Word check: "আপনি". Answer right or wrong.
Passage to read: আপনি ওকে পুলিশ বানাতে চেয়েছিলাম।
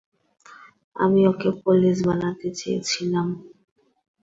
wrong